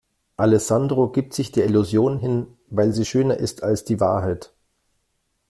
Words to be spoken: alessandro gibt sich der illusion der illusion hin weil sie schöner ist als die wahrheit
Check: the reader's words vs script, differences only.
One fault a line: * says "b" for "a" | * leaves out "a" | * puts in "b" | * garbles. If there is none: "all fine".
* leaves out "der illusion"